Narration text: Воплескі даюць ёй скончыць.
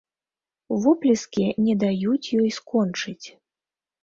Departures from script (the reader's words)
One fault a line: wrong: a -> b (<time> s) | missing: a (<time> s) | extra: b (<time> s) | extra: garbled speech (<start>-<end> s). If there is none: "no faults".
extra: не (1.6 s)